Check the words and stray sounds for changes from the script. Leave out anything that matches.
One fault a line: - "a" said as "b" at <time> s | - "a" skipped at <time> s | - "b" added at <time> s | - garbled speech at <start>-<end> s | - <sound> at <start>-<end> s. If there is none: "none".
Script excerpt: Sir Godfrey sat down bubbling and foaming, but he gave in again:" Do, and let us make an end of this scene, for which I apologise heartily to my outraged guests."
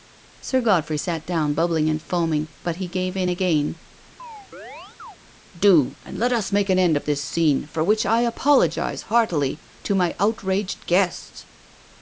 - chirp at 4.2-5.2 s